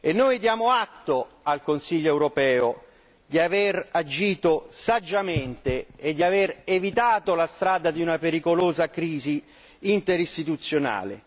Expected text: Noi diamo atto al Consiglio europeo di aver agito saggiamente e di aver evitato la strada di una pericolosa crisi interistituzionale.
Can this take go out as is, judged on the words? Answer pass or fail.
pass